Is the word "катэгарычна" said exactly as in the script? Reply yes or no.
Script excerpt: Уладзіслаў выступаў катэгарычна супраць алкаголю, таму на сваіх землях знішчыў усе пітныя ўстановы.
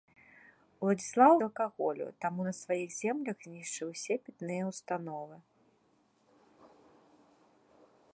no